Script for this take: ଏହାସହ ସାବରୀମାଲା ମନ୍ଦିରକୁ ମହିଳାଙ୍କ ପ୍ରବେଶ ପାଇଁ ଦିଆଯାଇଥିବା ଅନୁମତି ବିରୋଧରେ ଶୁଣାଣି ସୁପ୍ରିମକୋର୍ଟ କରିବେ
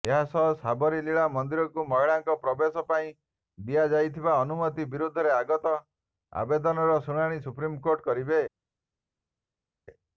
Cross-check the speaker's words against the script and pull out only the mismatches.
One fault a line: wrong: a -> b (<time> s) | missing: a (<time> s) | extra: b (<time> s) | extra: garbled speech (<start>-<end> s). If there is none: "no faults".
extra: ଆଗତ ଆବେଦନର (5.3 s)